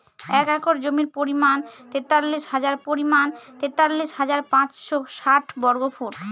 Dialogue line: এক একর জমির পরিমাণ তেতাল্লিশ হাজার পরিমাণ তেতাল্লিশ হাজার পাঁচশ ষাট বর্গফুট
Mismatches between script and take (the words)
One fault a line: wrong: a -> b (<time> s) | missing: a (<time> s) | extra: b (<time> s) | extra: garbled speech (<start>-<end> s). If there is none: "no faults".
no faults